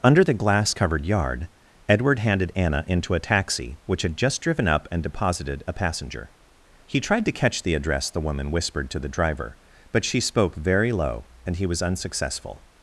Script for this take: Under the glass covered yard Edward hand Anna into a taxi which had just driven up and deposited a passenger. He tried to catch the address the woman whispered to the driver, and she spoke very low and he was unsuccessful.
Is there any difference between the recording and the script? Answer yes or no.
yes